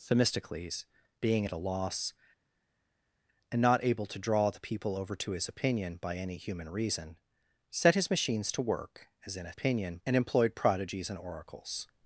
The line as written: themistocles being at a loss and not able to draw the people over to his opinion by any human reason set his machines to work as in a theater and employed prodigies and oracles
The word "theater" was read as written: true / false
false